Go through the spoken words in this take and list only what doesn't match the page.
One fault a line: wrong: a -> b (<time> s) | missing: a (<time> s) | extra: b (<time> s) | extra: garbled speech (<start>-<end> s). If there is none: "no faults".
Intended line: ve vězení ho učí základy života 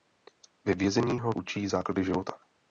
no faults